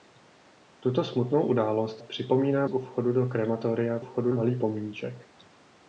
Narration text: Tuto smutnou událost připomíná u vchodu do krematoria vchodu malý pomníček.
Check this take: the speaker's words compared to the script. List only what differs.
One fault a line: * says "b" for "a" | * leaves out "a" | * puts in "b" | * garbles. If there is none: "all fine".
all fine